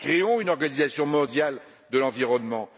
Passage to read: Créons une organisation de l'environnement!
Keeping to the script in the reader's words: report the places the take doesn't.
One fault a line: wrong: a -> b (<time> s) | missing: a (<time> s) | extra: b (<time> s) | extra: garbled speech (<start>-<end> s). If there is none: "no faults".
extra: mondiale (1.0 s)